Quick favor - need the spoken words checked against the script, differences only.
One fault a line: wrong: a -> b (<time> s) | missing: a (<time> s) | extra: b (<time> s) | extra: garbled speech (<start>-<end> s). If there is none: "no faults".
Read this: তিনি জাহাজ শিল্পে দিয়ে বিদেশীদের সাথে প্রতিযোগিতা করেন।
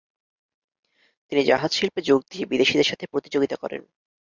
extra: যোগ (2.0 s)